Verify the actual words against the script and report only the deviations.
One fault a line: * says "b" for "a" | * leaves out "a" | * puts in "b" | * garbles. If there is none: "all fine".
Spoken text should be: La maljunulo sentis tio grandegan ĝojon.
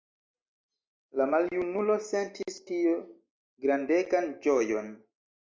all fine